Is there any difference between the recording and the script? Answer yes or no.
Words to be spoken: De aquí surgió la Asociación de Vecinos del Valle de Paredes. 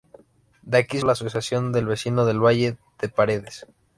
yes